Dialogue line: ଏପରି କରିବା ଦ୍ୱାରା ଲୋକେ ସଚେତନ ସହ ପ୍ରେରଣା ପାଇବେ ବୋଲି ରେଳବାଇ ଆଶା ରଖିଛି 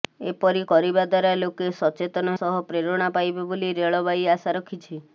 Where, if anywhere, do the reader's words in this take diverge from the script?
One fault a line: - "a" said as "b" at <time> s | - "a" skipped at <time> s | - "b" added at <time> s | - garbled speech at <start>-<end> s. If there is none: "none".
none